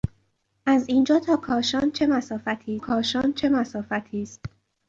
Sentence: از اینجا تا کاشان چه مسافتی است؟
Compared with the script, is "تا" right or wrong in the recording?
right